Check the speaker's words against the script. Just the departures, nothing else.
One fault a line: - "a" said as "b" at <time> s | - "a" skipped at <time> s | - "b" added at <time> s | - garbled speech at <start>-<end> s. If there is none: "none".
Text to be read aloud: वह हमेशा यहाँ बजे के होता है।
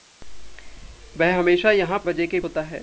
none